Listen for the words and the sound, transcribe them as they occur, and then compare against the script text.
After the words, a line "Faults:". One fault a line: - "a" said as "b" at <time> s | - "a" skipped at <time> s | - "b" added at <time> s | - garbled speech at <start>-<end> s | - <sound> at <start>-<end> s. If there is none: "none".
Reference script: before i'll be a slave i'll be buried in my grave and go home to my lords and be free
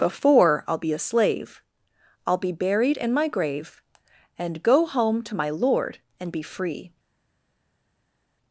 before i'll be a slave i'll be buried in my grave and go home to my lord and be free
Faults:
- "lords" said as "lord" at 5.5 s